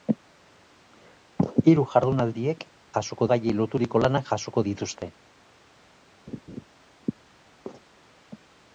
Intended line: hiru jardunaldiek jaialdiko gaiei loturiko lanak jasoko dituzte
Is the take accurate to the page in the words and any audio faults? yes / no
no